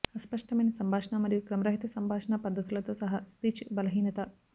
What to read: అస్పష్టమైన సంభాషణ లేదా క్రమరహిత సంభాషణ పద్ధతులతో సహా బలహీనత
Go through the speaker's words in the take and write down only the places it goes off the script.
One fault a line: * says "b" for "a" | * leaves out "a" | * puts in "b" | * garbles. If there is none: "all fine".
* says "మరియు" for "లేదా"
* puts in "స్పీచ్"